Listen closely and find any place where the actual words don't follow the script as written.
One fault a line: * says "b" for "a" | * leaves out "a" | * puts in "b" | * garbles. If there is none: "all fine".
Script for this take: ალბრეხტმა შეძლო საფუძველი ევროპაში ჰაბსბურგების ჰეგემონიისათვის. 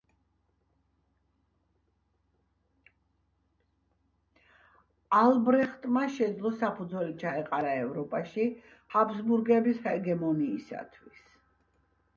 * puts in "ჩაეყარა"